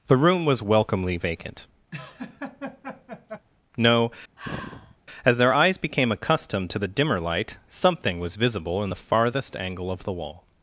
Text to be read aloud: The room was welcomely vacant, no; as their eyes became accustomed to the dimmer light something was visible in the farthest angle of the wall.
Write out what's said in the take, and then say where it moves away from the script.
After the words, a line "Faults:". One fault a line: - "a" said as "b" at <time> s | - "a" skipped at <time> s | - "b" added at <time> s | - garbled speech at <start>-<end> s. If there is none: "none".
The room was welcomely vacant, no; as their eyes became accustomed to the dimmer light something was visible in the farthest angle of the wall.
Faults:
none